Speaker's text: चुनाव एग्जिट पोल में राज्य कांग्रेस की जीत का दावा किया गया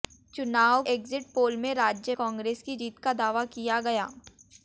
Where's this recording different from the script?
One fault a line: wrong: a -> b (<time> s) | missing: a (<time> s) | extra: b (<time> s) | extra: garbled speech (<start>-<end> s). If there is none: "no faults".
no faults